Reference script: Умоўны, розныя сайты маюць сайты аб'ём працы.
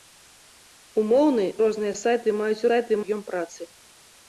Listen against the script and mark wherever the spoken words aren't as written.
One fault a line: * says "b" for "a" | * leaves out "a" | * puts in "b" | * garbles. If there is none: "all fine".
all fine